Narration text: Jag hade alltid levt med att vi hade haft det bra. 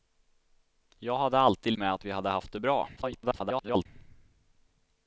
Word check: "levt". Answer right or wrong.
wrong